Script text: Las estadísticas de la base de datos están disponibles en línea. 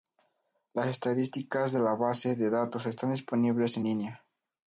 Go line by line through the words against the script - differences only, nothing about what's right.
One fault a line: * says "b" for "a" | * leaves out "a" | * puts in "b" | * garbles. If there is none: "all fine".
all fine